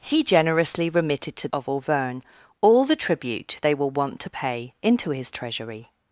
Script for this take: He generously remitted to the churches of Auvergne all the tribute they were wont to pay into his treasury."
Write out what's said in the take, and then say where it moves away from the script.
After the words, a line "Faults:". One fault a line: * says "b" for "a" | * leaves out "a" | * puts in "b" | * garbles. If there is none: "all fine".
He generously remitted to of Auvergne all the tribute they were wont to pay into his treasury."
Faults:
* leaves out "the churches"